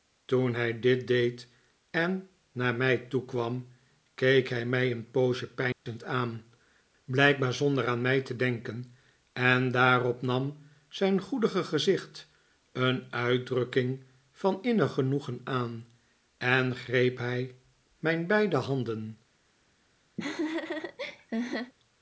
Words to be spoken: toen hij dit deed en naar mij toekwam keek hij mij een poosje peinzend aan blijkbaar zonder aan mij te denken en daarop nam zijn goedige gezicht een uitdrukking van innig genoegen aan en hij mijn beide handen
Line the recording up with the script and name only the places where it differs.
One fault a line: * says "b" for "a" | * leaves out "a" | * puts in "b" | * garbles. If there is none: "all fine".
* puts in "greep"